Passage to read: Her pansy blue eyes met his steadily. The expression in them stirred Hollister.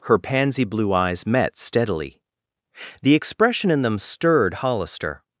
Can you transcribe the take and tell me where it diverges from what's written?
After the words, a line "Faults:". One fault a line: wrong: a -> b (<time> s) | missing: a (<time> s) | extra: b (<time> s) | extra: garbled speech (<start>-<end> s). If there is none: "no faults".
Her pansy blue eyes met steadily. The expression in them stirred Hollister.
Faults:
missing: his (1.6 s)